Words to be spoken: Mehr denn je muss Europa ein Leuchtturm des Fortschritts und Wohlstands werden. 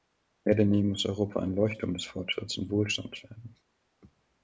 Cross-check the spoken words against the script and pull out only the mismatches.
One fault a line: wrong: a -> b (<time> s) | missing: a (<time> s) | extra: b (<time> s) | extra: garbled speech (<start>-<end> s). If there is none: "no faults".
no faults